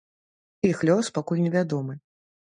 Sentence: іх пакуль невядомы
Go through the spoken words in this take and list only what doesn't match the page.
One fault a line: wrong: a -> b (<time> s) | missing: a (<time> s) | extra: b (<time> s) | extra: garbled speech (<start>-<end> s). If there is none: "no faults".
extra: лёс (0.9 s)